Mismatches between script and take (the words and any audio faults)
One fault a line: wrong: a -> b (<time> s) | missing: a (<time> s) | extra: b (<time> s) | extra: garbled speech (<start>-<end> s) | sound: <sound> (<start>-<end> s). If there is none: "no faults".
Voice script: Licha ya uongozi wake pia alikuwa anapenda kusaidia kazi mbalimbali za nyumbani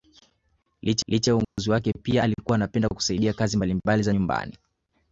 extra: licha (1.1 s)
sound: dropout (1.4-1.6 s)